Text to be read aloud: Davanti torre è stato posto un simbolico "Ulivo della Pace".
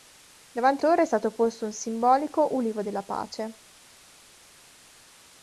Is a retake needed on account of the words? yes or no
no